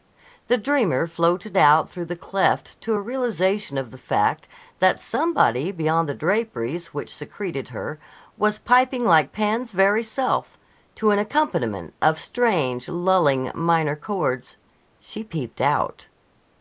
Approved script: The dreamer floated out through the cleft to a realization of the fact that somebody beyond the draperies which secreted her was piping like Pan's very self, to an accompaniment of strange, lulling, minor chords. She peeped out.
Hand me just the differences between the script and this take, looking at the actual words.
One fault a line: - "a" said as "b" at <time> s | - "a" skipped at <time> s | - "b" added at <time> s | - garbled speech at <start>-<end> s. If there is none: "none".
none